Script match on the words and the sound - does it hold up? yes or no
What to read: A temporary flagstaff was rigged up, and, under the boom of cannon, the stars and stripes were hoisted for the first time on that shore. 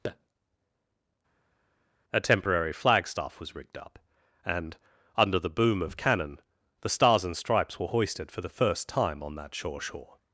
no